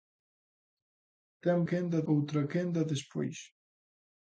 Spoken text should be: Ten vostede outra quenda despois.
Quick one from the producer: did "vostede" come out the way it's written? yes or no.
no